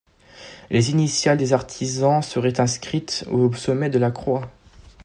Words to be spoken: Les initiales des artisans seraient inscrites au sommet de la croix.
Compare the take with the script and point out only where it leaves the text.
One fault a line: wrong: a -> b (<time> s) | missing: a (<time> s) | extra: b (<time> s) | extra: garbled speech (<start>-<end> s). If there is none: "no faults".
no faults